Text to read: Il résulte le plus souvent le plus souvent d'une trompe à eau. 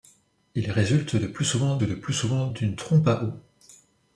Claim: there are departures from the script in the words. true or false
false